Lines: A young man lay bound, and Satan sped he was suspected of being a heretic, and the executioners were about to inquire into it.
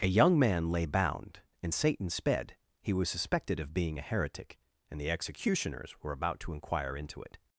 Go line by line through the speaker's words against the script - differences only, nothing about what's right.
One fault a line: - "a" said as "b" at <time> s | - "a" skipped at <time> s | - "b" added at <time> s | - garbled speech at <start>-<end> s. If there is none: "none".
none